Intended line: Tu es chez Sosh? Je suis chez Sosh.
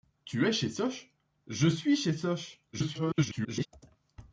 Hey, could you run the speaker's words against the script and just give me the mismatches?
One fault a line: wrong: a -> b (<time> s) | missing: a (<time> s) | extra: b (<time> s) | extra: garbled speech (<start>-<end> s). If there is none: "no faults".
extra: garbled speech (2.7-3.7 s)